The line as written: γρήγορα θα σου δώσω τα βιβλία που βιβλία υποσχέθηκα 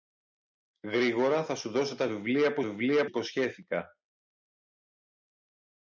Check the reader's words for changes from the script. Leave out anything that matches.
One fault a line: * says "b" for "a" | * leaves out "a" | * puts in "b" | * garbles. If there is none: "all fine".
all fine